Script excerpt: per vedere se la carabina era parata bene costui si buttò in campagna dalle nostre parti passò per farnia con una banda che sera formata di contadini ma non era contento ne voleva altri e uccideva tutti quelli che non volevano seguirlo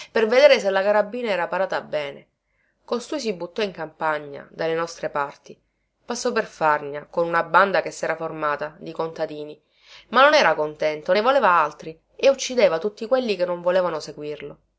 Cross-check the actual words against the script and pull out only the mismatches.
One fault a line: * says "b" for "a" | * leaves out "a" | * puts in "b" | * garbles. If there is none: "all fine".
all fine